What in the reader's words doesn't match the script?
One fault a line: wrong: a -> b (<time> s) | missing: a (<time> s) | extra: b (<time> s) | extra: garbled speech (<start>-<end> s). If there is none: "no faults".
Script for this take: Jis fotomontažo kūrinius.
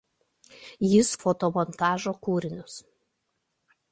no faults